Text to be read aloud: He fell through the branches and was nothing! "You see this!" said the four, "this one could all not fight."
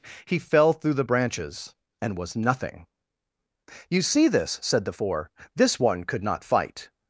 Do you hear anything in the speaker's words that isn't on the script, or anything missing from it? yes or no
yes